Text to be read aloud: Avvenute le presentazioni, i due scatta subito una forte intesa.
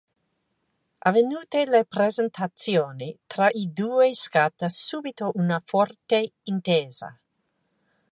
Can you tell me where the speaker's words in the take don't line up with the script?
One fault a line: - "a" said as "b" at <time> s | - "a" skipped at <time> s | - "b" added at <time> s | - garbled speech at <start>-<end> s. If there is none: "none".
- "tra" added at 3.3 s